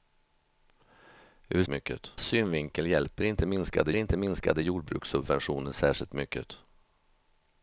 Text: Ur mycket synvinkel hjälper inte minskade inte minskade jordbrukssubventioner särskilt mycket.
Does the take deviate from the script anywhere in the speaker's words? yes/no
no